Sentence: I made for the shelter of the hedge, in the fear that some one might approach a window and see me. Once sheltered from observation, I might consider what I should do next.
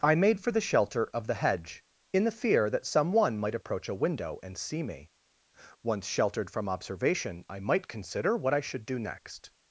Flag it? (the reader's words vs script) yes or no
no